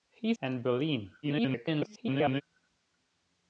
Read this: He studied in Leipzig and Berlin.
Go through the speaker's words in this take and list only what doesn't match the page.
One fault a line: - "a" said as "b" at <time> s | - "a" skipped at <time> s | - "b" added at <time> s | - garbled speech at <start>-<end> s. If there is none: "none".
- "studied in Leipzig" skipped at 0.3 s
- garbled speech at 1.2-2.4 s